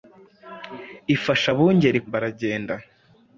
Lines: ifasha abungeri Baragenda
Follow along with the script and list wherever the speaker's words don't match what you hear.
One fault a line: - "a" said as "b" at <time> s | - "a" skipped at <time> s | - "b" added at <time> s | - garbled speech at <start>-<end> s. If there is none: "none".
none